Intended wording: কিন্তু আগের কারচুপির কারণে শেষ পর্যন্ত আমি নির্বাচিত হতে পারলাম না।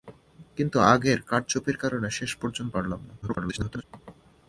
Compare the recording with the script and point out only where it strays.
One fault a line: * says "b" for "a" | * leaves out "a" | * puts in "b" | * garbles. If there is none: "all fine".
* leaves out "আমি নির্বাচিত হতে"
* garbles